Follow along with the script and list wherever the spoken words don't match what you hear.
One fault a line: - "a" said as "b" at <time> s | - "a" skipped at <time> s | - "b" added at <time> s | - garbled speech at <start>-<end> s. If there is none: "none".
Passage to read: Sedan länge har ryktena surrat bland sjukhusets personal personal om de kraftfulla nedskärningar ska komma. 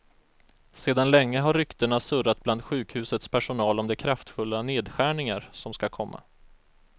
- "personal" skipped at 3.8 s
- "som" added at 5.5 s